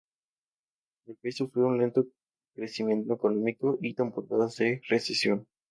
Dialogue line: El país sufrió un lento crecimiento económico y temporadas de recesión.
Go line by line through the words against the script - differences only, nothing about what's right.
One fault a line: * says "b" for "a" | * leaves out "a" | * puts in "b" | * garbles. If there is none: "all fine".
all fine